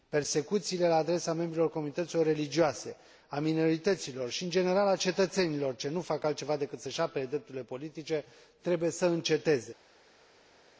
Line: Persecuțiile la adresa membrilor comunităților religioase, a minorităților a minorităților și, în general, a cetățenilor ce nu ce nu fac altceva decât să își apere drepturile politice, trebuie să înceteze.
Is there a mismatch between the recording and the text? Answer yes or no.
yes